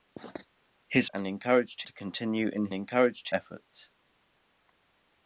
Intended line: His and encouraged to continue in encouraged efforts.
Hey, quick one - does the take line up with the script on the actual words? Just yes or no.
yes